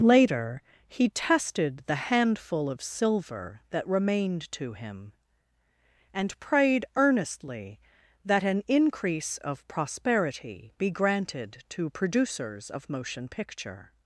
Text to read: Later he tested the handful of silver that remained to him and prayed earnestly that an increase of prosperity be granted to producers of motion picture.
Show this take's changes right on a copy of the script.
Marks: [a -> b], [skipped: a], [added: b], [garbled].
Later he tested the handful of silver that remained to him and prayed earnestly that an increase of prosperity be granted to producers of motion picture.